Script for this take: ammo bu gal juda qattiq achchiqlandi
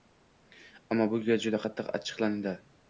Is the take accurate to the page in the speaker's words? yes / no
yes